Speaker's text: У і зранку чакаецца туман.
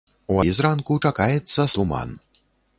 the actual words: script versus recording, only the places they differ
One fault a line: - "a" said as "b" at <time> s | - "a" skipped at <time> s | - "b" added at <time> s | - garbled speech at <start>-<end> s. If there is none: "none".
none